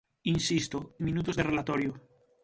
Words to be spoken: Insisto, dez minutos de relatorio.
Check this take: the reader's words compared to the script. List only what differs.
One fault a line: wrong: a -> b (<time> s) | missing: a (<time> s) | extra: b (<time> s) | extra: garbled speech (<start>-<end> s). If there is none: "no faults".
missing: dez (1.0 s)